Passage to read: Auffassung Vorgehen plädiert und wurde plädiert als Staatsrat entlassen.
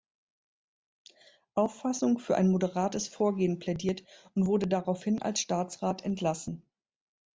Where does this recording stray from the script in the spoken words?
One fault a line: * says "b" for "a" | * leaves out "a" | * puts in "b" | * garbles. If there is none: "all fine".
* puts in "für ein moderates"
* says "daraufhin" for "plädiert"